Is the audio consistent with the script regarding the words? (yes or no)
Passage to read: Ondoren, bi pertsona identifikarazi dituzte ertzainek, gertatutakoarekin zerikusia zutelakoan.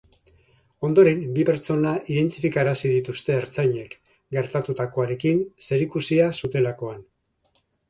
yes